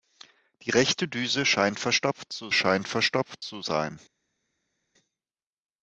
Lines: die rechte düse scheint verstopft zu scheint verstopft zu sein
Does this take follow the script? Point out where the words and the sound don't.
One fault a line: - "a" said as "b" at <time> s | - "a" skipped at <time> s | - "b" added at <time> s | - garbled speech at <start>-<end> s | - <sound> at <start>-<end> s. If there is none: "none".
none